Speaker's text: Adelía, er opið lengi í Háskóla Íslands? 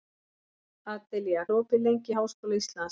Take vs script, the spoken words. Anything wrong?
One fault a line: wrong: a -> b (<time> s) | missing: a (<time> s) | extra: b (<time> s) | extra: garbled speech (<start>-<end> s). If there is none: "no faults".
no faults